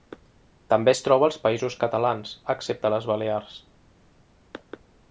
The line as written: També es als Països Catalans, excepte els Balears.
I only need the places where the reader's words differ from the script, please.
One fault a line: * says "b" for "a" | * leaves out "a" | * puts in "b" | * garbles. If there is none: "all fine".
* puts in "troba"
* says "les" for "els"